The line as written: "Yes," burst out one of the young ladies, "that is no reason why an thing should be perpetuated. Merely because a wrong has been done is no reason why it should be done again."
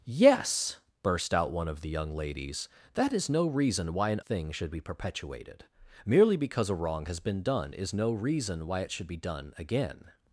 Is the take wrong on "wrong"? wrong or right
right